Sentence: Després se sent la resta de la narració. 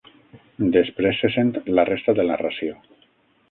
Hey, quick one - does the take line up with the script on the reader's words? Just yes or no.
no